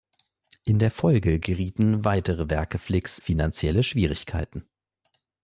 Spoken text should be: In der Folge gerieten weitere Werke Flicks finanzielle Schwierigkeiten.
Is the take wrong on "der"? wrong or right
right